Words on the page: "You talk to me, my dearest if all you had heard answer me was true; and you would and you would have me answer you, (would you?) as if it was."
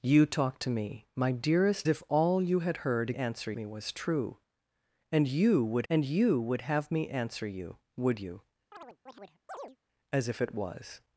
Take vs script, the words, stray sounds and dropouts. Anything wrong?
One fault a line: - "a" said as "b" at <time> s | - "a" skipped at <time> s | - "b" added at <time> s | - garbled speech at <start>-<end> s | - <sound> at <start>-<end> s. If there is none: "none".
- chirp at 8.7-9.8 s